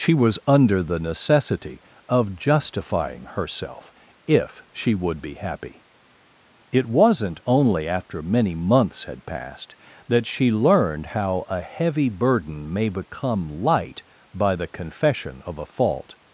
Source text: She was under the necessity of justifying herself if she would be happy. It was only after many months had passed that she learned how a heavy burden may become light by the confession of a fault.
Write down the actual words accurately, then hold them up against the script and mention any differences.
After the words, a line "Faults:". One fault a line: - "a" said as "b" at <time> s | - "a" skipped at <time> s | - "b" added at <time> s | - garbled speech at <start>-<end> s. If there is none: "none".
She was under the necessity of justifying herself if she would be happy. It wasn't only after many months had passed that she learned how a heavy burden may become light by the confession of a fault.
Faults:
- "was" said as "wasn't" at 6.9 s